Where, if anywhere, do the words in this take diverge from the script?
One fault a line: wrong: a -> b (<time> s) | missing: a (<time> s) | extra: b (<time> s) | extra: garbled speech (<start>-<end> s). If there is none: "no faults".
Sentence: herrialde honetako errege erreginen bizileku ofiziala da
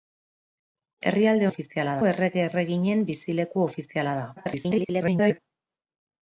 wrong: honetako -> ofiziala (1.5 s)
extra: garbled speech (4.4-5.4 s)